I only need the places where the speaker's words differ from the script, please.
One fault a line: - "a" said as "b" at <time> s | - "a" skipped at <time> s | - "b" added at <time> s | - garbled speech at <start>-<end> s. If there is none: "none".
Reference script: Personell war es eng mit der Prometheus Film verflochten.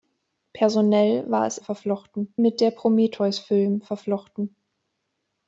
- "eng" said as "verflochten" at 1.6 s